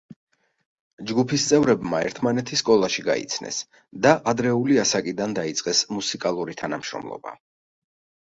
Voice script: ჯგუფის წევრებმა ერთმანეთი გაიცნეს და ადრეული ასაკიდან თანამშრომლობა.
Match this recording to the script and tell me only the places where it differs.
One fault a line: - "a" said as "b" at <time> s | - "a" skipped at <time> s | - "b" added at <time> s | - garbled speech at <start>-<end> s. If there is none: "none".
- "სკოლაში" added at 2.6 s
- "დაიწყეს მუსიკალური" added at 5.4 s